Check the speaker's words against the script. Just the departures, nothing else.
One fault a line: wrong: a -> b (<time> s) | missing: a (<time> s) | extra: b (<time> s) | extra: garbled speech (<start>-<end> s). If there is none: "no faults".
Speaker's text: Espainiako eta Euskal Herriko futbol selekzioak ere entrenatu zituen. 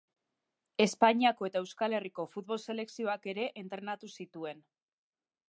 no faults